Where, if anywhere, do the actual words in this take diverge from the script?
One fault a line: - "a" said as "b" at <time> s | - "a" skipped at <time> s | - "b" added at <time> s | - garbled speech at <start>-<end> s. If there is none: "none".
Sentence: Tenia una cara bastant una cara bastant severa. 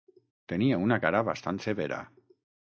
- "una cara bastant" skipped at 1.6 s